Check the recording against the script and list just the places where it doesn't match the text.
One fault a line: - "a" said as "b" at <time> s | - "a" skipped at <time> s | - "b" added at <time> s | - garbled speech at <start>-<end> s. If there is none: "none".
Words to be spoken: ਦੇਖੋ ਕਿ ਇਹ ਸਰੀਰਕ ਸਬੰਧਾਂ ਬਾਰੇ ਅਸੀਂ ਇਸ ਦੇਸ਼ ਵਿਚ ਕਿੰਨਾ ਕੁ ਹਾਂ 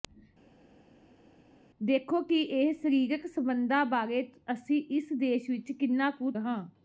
none